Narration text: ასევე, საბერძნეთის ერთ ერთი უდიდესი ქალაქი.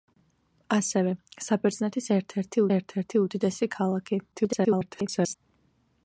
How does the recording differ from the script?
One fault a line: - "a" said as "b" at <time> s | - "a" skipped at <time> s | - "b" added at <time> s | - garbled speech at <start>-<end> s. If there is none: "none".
- "ერთ ერთი" added at 2.8 s
- garbled speech at 4.3-5.3 s